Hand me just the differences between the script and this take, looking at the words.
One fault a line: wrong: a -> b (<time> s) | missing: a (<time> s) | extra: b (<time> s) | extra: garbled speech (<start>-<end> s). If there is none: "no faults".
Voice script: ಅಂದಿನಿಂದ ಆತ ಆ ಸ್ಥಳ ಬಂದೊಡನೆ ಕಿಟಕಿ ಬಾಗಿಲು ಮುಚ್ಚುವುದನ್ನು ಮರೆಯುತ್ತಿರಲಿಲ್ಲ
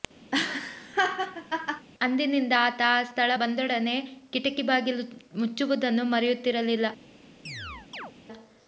no faults